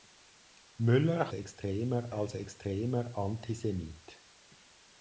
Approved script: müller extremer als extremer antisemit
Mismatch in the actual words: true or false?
false